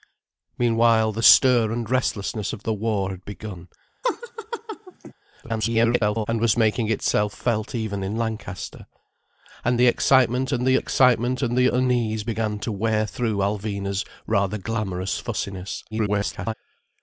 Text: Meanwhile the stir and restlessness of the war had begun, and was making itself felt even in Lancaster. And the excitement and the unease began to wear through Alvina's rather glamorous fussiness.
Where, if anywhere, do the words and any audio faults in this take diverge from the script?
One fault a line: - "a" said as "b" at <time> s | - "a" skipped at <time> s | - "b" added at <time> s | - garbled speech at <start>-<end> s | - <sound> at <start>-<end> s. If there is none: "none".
- laugh at 4.0-5.1 s
- garbled speech at 5.4-6.3 s
- "excitement and the" added at 10.8 s
- garbled speech at 15.9-16.5 s